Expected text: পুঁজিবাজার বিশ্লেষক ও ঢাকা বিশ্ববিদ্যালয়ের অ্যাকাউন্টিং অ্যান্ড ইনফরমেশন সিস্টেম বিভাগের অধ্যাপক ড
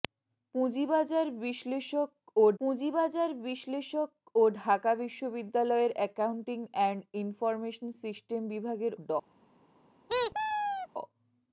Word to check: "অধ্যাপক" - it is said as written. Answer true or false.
false